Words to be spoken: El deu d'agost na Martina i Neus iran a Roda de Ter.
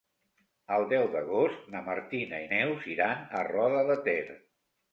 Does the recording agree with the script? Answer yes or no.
yes